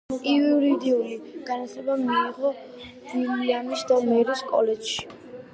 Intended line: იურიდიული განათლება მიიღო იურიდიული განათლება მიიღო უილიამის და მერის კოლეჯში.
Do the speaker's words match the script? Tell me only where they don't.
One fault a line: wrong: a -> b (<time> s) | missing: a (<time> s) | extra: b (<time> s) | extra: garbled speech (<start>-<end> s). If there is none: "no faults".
missing: იურიდიული განათლება მიიღო (2.5 s)